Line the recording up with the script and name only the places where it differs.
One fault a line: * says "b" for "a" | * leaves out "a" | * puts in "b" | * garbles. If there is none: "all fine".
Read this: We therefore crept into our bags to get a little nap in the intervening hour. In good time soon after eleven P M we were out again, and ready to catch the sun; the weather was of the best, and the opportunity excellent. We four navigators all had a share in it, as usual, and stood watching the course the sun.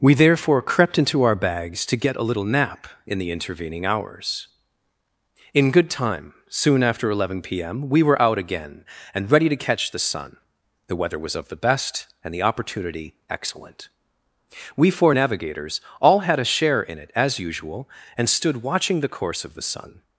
* says "hours" for "hour"
* puts in "of"